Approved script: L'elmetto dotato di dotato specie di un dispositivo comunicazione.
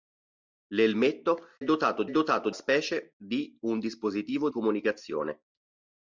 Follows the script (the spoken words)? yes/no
yes